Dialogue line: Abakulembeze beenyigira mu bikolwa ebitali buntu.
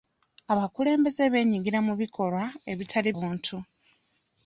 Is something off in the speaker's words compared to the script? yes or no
no